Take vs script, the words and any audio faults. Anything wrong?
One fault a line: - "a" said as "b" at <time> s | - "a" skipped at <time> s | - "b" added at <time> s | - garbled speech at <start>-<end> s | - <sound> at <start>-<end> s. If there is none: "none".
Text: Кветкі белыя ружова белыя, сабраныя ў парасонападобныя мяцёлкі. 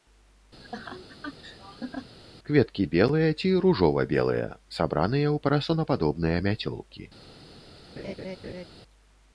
- laugh at 0.6-2.1 s
- "ці" added at 3.4 s
- laugh at 8.0-8.6 s